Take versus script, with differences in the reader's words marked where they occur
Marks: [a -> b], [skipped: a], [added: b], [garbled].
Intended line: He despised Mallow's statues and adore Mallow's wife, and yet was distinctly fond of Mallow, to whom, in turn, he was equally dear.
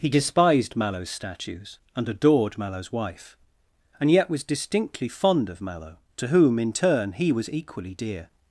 He despised Mallow's statues and [adore -> adored] Mallow's wife, and yet was distinctly fond of Mallow, to whom, in turn, he was equally dear.